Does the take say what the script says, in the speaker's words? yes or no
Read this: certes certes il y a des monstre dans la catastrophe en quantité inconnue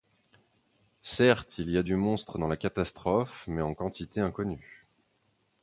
no